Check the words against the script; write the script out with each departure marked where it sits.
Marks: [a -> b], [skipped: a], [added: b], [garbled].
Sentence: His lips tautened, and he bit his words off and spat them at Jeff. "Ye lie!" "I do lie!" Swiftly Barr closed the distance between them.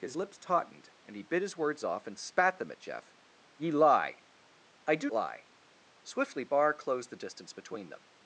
His lips tautened, and he bit his words off and spat them at Jeff. "Ye lie!" "I do lie!" Swiftly Barr closed the distance between them.